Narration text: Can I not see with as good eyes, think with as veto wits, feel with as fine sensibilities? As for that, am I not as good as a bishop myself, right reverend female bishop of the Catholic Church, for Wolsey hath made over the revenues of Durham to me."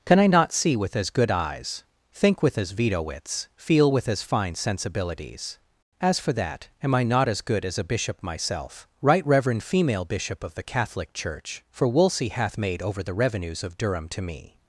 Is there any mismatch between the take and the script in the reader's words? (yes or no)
no